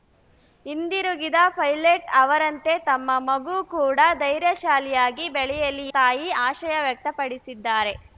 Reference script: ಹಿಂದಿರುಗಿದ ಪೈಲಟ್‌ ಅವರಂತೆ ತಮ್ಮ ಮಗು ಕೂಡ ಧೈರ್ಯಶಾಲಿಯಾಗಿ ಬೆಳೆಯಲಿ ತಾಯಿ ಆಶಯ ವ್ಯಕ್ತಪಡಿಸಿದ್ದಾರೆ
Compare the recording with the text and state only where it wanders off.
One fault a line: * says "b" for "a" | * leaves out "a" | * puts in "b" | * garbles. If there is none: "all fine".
all fine